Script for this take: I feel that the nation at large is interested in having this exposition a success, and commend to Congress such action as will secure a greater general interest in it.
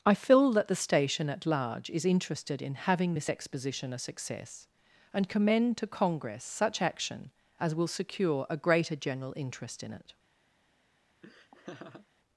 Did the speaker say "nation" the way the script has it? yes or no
no